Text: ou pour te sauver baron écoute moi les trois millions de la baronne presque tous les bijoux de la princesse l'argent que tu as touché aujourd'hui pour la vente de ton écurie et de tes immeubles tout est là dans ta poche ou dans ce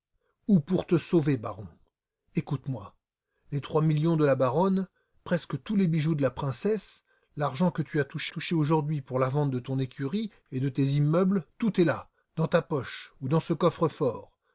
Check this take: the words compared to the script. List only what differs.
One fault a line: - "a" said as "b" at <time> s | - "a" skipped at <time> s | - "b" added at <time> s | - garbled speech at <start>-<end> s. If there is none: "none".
- "touché" added at 8.3 s